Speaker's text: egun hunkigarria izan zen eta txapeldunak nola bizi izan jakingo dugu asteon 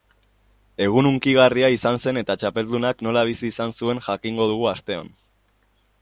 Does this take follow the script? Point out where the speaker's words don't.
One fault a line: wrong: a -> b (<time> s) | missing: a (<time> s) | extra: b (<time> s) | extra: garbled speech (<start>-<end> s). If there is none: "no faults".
extra: zuen (3.8 s)